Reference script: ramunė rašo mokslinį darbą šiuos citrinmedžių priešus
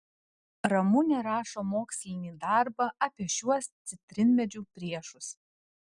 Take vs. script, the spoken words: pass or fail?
fail